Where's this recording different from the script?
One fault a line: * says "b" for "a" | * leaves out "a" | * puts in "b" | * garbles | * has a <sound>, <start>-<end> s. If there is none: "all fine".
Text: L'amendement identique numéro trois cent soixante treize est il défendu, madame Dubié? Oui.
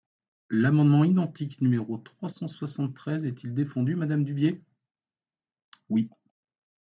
all fine